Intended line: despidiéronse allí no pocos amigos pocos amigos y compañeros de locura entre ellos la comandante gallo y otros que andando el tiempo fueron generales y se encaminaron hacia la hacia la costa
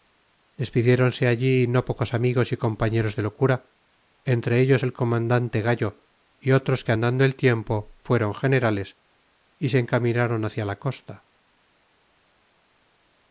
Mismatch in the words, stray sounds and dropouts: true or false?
true